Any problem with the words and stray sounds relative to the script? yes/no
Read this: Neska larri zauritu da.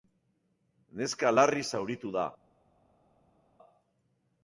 no